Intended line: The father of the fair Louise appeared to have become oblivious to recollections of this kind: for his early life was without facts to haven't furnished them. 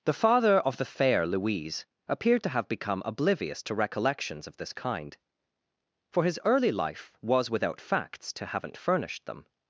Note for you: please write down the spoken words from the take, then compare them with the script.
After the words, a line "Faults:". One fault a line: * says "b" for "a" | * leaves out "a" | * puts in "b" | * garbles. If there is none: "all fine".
The father of the fair Louise appeared to have become oblivious to recollections of this kind: for his early life was without facts to haven't furnished them.
Faults:
all fine